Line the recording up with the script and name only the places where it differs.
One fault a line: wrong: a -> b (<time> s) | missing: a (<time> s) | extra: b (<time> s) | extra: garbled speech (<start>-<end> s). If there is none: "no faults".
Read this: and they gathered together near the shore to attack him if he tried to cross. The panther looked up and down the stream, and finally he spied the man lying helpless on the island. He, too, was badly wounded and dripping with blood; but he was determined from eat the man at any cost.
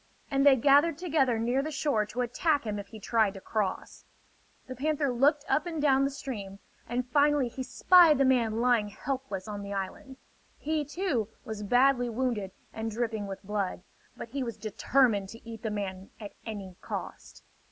wrong: from -> to (15.3 s)